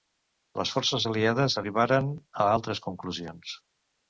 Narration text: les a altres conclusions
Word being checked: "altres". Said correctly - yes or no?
yes